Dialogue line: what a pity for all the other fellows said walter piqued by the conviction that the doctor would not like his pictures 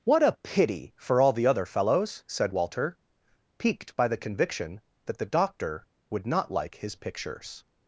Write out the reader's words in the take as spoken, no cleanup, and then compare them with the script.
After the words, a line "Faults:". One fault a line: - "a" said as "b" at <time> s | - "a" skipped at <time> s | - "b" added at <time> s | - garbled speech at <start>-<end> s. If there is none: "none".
what a pity for all the other fellows said walter piqued by the conviction that the doctor would not like his pictures
Faults:
none